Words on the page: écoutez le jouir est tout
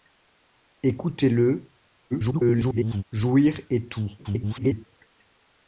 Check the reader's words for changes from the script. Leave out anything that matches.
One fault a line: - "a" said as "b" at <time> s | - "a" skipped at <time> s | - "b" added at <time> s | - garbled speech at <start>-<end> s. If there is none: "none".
- garbled speech at 2.1-3.0 s
- garbled speech at 4.2-4.9 s